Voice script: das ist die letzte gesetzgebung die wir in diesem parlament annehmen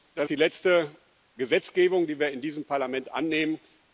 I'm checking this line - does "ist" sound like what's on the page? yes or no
no